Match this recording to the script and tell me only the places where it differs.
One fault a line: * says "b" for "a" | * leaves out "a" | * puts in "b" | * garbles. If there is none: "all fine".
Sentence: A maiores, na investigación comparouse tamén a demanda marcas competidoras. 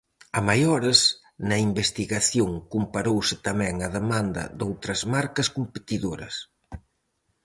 * puts in "doutras"